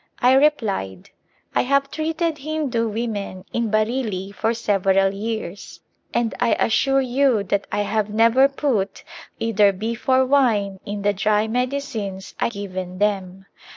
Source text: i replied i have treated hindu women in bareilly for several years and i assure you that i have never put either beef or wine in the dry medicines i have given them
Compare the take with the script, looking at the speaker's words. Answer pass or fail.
fail